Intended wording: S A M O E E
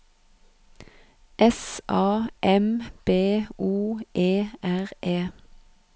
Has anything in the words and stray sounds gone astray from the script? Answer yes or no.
yes